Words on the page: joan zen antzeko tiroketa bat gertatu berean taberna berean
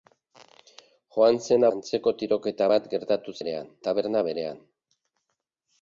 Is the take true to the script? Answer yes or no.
yes